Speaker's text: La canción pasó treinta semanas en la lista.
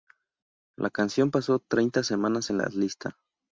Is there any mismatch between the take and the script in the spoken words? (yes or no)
no